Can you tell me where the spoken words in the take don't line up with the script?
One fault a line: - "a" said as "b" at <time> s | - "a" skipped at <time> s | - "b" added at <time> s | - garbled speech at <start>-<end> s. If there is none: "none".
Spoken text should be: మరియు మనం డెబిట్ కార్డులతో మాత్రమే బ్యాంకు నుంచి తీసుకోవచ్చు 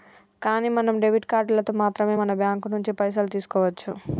- "మరియు" said as "కానీ" at 0.4 s
- "మన" added at 2.1 s
- "పైసలు" added at 2.9 s